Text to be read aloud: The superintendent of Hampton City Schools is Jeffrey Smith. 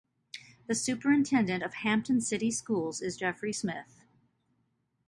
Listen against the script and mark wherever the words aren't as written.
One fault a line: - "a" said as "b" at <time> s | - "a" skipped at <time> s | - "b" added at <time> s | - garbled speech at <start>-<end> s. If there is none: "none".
none